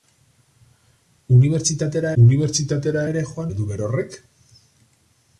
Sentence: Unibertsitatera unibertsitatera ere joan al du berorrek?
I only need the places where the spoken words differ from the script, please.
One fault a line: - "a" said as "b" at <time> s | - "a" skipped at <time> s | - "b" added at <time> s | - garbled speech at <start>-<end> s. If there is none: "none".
none